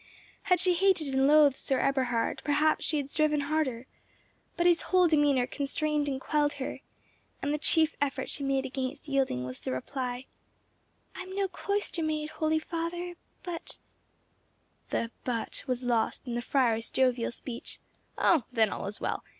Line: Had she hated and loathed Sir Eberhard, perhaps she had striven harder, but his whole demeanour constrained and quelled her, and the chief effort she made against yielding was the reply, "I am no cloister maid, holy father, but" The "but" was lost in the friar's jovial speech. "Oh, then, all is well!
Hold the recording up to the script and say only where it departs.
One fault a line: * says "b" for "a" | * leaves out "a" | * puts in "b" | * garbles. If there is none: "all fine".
all fine